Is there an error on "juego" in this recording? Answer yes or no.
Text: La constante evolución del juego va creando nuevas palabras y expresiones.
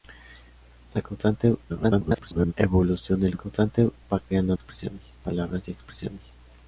yes